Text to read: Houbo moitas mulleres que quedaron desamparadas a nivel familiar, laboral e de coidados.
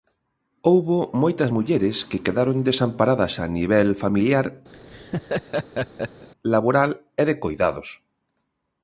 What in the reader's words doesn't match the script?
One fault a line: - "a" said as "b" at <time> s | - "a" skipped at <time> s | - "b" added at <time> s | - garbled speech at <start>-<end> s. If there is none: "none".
none